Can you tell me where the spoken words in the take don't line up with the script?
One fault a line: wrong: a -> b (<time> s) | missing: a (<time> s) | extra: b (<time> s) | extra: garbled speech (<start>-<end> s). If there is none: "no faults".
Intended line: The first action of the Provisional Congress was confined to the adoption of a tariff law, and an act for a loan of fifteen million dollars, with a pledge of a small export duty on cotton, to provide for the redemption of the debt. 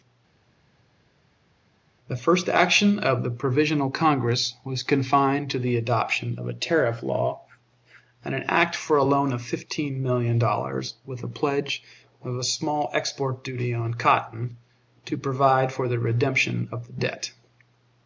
no faults